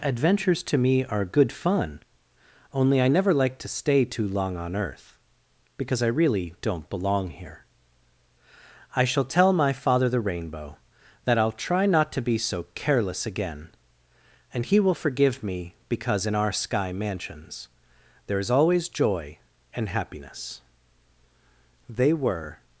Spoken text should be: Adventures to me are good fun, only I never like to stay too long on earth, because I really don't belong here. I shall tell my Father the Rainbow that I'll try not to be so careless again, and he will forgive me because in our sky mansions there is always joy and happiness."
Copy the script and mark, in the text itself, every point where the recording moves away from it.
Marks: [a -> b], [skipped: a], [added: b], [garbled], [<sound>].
Adventures to me are good fun, only I never like to stay too long on earth, because I really don't belong here. I shall tell my Father the Rainbow that I'll try not to be so careless again, and he will forgive me because in our sky mansions there is always joy and happiness." [added: They were]